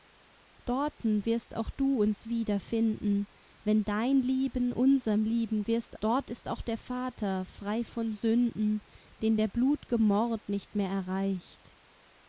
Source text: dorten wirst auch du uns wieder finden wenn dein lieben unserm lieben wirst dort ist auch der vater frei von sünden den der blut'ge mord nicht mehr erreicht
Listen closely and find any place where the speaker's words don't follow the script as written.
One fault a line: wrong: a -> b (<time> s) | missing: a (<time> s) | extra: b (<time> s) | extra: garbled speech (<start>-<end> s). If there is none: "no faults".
no faults